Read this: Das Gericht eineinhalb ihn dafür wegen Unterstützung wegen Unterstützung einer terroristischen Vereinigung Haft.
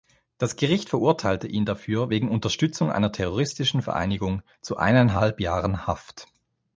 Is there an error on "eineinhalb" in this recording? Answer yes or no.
yes